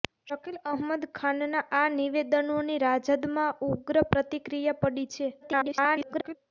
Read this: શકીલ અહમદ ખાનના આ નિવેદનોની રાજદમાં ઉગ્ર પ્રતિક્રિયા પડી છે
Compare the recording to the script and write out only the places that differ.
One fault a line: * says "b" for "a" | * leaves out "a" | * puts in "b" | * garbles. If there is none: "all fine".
* garbles